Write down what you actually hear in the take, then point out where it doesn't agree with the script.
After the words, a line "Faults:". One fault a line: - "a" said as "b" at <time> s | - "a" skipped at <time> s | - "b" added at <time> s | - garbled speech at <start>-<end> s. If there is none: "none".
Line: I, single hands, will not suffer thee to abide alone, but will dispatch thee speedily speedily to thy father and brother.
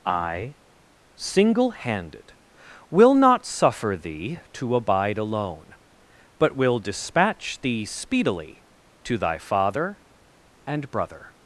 I, single handed, will not suffer thee to abide alone, but will dispatch thee speedily to thy father and brother.
Faults:
- "hands" said as "handed" at 1.7 s
- "speedily" skipped at 8.6 s